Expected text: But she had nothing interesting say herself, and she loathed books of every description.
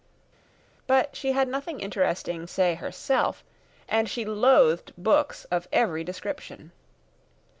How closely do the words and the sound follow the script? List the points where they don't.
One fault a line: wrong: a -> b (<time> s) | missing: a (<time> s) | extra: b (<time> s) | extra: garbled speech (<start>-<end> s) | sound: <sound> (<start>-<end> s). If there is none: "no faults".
no faults